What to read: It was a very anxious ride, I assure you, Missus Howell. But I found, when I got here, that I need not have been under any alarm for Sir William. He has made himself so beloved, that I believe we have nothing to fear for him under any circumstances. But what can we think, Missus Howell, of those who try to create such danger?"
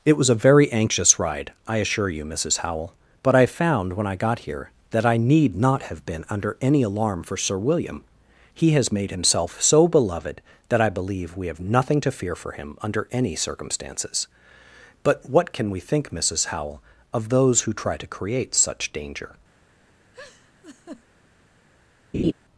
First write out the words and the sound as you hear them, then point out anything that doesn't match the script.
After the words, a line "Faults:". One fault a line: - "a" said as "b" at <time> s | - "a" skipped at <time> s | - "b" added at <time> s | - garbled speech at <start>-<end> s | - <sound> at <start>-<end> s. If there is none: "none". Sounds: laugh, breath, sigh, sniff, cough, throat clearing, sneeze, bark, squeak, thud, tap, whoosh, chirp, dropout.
It was a very anxious ride, I assure you, Missus Howell. But I found, when I got here, that I need not have been under any alarm for Sir William. He has made himself so beloved, that I believe we have nothing to fear for him under any circumstances. But what can we think, Missus Howell, of those who try to create such danger?"
Faults:
- laugh at 20.1-21.0 s
- laugh at 22.1-22.3 s